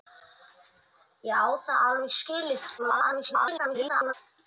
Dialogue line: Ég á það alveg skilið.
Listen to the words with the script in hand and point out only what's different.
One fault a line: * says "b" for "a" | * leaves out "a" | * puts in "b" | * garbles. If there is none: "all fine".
* garbles